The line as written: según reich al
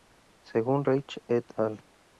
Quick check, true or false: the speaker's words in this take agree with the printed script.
false